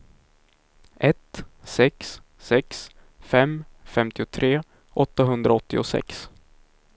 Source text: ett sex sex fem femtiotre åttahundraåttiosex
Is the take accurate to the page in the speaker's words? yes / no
yes